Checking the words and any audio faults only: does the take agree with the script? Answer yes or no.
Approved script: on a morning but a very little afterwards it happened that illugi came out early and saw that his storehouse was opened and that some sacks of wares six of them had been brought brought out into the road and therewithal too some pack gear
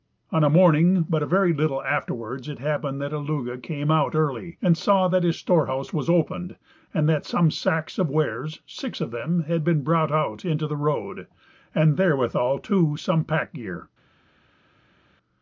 no